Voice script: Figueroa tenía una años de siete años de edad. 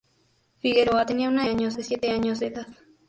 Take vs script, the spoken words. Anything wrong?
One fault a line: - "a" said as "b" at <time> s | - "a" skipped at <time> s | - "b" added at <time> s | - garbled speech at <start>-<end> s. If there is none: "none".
none